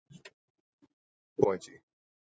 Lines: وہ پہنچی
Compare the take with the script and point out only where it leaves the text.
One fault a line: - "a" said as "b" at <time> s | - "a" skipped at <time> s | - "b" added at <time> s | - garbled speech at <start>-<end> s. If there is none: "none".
none